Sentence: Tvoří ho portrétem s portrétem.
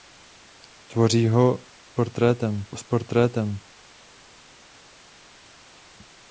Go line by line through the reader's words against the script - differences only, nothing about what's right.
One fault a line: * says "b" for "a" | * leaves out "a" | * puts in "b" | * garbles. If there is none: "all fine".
all fine